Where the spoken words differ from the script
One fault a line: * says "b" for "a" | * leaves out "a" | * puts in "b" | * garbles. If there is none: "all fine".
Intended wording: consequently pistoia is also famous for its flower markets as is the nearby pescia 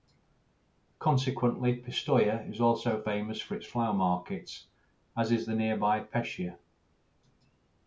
all fine